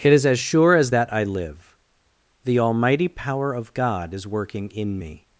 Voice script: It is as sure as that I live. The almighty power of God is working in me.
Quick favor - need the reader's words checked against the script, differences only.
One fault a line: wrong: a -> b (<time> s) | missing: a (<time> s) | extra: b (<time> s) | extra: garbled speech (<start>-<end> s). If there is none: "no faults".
no faults